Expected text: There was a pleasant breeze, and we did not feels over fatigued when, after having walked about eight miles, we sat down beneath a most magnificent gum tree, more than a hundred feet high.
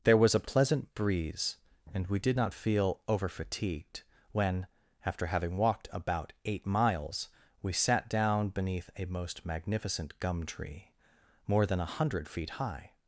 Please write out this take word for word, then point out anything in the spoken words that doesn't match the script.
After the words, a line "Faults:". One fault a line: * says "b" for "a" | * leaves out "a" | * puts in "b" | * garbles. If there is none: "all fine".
There was a pleasant breeze, and we did not feel over fatigued when, after having walked about eight miles, we sat down beneath a most magnificent gum tree, more than a hundred feet high.
Faults:
* says "feel" for "feels"